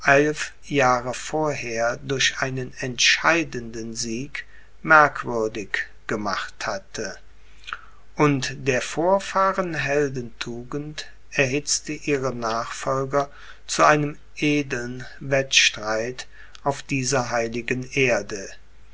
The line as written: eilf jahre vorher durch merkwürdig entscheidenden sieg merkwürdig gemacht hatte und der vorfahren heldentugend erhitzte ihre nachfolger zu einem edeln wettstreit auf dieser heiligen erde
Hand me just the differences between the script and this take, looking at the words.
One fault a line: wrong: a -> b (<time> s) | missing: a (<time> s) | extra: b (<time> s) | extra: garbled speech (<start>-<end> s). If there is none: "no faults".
wrong: merkwürdig -> einen (2.4 s)